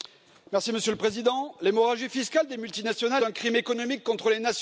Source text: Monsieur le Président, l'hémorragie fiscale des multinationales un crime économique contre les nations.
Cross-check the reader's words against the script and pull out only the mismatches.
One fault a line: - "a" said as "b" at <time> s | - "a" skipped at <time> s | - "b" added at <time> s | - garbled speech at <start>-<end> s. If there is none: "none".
none